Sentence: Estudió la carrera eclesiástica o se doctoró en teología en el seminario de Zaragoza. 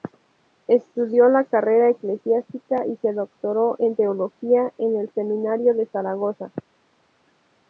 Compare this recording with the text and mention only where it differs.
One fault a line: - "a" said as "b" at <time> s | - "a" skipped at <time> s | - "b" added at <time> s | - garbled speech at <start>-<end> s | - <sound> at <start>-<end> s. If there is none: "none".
- "o" said as "y" at 2.9 s